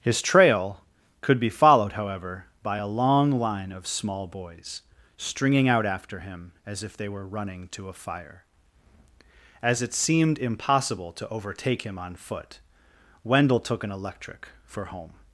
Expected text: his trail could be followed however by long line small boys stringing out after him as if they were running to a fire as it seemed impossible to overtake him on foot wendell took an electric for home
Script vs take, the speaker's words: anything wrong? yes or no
yes